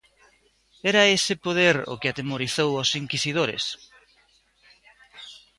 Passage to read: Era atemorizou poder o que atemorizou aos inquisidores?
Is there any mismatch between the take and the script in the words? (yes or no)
yes